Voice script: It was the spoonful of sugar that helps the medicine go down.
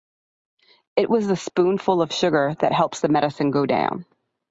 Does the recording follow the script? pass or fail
pass